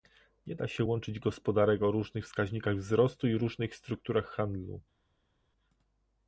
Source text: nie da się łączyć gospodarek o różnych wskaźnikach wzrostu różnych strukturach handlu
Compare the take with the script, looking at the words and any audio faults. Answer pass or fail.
fail